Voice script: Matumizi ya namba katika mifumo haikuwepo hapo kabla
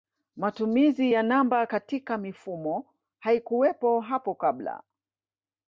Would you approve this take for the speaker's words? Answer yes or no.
yes